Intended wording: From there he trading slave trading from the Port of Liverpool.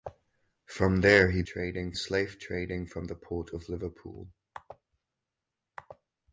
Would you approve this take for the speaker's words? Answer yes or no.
yes